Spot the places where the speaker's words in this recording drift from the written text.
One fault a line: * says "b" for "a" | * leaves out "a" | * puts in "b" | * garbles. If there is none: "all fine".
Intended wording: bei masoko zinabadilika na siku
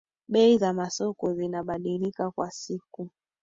* puts in "za"
* says "kwa" for "na"